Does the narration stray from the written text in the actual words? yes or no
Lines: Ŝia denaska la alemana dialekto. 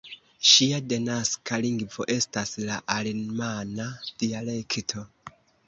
yes